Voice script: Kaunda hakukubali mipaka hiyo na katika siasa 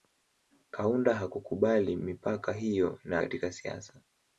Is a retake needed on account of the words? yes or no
no